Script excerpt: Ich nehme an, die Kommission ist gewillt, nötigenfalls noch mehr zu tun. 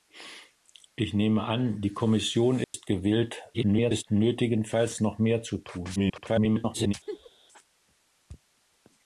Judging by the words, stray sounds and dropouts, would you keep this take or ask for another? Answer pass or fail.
fail